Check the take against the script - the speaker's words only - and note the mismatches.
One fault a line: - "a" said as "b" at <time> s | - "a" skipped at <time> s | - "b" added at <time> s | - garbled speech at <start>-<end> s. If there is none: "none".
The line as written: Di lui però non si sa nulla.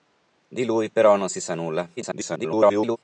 - garbled speech at 2.0-3.0 s